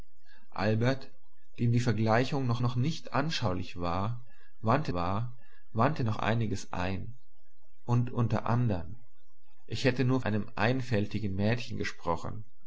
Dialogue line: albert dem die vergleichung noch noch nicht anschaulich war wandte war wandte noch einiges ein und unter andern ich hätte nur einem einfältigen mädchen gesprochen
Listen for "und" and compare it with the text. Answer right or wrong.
right